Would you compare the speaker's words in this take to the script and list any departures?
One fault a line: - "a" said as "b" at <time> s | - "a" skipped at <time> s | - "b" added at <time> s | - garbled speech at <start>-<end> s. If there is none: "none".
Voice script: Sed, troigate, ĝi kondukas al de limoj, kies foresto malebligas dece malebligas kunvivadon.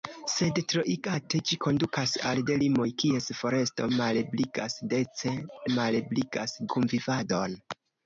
none